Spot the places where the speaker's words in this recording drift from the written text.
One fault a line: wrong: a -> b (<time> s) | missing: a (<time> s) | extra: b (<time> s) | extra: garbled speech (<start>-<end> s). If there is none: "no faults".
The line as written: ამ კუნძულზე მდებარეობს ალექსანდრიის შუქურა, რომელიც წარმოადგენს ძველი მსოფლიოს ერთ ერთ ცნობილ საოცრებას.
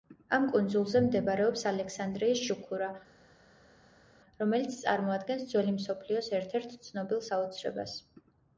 no faults